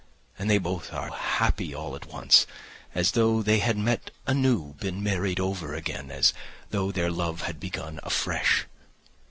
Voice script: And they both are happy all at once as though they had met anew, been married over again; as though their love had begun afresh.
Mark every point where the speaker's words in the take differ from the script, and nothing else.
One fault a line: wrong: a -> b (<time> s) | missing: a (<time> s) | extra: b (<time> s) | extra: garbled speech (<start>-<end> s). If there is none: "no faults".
no faults